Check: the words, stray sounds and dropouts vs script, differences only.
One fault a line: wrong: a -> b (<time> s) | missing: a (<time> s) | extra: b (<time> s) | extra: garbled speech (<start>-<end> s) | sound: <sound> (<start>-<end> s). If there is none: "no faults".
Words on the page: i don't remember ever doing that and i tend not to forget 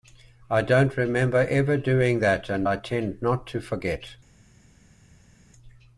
no faults